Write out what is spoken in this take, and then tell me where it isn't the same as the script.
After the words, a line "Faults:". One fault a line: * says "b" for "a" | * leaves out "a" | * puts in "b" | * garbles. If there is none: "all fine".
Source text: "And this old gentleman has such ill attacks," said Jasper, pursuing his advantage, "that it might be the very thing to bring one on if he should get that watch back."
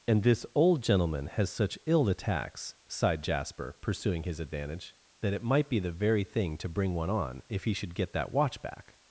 "And this old gentleman has such ill attacks," sighed Jasper, pursuing his advantage, "that it might be the very thing to bring one on if he should get that watch back."
Faults:
* says "sighed" for "said"